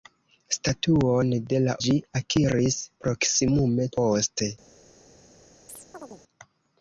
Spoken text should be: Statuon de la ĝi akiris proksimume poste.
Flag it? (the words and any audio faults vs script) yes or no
yes